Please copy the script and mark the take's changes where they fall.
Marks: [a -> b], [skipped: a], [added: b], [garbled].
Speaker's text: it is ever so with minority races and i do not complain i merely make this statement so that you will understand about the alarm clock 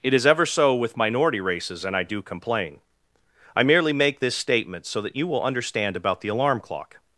it is ever so with minority races and i do [skipped: not] complain i merely make this statement so that you will understand about the alarm clock